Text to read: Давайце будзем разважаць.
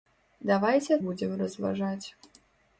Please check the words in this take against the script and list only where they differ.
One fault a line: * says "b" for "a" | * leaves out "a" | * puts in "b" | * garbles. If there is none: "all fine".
all fine